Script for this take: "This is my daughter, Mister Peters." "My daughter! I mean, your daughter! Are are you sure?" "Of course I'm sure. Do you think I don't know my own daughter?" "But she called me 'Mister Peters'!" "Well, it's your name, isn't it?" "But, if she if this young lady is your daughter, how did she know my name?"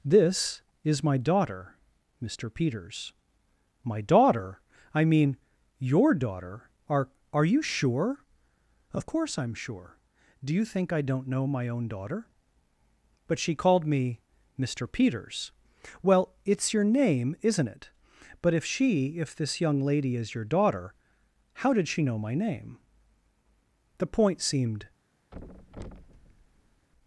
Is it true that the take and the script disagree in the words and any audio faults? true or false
true